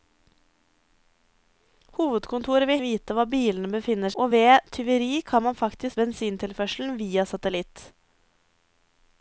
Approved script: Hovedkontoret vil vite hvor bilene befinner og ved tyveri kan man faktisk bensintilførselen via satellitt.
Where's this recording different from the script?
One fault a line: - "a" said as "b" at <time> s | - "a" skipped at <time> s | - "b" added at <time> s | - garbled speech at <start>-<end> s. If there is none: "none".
none